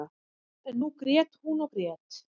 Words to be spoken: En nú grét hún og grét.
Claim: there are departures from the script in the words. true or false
false